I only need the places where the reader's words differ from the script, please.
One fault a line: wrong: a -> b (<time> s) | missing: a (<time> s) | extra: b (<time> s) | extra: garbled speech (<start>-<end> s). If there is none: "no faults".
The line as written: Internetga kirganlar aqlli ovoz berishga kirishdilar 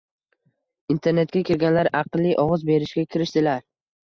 no faults